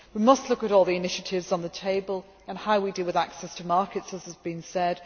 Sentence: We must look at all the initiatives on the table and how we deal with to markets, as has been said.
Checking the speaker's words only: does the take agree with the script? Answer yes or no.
no